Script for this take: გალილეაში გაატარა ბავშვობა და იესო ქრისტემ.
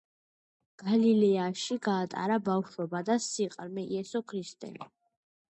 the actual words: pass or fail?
fail